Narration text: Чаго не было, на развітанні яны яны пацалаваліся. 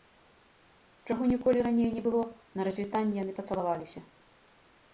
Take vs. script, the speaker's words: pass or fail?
fail